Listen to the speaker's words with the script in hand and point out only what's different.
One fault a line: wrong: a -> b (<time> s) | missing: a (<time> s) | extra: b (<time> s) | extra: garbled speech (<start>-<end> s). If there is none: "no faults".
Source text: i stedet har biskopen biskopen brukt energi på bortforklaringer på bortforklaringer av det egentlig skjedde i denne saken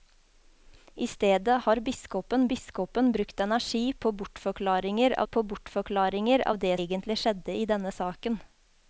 no faults